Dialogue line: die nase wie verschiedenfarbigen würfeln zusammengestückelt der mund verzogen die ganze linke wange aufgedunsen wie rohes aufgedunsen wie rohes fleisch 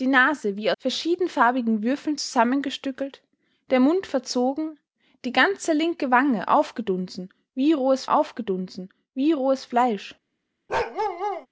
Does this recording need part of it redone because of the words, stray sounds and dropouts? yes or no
yes